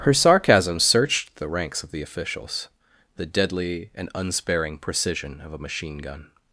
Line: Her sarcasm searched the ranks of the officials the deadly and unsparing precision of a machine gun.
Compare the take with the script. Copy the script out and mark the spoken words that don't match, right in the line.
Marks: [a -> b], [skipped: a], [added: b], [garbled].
Her sarcasm searched the ranks of the officials the deadly and unsparing precision of a machine gun.